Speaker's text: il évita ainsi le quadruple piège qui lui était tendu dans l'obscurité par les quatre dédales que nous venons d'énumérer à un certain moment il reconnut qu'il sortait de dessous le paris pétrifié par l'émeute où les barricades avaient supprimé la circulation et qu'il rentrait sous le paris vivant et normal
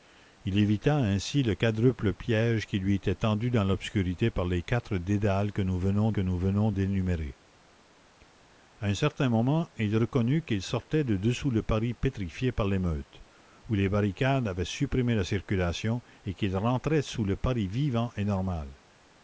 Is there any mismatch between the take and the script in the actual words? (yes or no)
yes